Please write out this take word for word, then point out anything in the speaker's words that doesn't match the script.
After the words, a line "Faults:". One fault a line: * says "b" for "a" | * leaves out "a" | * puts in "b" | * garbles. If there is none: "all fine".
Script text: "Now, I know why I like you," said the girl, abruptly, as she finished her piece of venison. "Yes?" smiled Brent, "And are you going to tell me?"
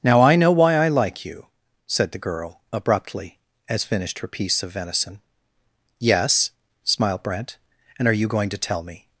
"Now, I know why I like you," said the girl, abruptly, as finished her piece of venison. "Yes?" smiled Brent, "And are you going to tell me?"
Faults:
* leaves out "she"